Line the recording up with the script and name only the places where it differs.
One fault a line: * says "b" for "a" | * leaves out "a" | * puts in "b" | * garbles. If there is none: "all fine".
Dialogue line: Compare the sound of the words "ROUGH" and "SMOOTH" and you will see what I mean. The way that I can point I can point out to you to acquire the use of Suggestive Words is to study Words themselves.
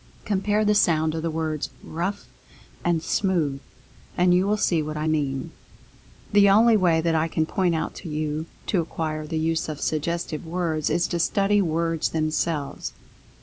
* puts in "only"
* leaves out "I can point"